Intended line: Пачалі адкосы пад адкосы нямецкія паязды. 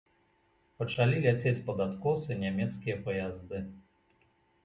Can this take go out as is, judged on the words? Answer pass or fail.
fail